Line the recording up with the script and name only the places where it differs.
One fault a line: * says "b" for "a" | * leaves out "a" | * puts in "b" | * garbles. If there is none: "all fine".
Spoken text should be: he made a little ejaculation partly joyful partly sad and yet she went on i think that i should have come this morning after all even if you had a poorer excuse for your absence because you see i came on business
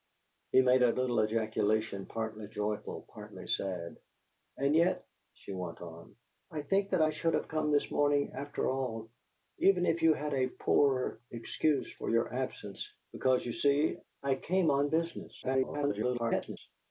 * garbles